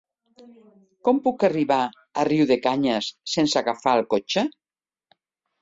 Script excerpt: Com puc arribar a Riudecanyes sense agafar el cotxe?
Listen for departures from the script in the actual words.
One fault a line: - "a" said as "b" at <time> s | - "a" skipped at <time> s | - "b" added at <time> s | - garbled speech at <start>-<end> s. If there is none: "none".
none